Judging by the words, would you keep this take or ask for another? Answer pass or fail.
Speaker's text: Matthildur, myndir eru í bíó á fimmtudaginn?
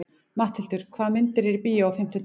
fail